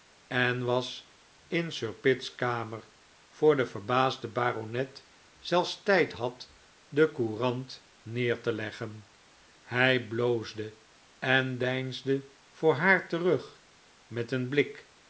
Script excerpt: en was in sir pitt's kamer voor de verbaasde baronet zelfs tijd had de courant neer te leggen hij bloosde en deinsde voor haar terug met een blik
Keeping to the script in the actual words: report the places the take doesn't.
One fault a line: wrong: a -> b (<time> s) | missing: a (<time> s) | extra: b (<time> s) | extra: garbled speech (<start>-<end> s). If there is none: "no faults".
no faults